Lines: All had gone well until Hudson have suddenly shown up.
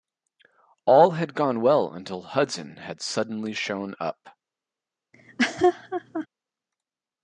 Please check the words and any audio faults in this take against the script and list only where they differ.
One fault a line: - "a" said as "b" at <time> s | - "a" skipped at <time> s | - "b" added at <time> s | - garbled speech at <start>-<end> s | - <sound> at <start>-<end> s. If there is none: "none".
- "have" said as "had" at 2.8 s
- laugh at 5.1-6.3 s